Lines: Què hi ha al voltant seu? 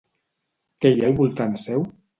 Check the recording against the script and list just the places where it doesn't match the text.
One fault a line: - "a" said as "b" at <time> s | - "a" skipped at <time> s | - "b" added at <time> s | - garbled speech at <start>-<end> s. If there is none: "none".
none